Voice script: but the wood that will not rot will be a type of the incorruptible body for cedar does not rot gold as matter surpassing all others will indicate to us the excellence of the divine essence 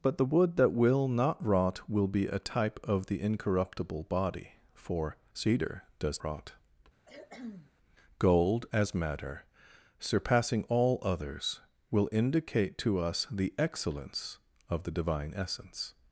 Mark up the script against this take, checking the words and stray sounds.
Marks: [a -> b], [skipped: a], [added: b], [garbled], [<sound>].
but the wood that will not rot will be a type of the incorruptible body for cedar does [skipped: not] rot [cough] gold as matter surpassing all others will indicate to us the excellence of the divine essence